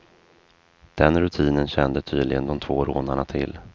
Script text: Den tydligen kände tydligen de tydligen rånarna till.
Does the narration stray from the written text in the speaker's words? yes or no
yes